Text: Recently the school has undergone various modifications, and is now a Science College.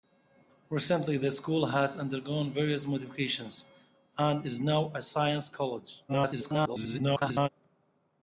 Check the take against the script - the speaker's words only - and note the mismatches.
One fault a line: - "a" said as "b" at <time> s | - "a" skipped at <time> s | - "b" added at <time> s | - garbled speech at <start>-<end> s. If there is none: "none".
- garbled speech at 6.1-7.5 s